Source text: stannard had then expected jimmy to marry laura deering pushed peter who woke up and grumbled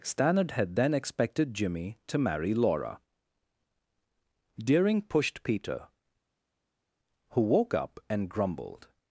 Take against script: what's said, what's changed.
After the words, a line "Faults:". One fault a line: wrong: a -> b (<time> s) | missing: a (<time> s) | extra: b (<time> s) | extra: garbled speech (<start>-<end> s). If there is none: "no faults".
stannard had then expected jimmy to marry laura deering pushed peter who woke up and grumbled
Faults:
no faults